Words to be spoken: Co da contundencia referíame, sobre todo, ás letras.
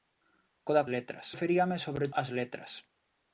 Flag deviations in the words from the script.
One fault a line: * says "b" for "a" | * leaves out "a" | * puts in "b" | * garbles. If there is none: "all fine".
* says "letras" for "contundencia"
* leaves out "todo"